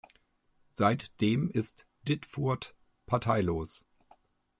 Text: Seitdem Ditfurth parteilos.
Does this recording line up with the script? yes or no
no